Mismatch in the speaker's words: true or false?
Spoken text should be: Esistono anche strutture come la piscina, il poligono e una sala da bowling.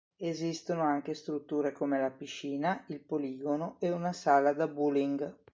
false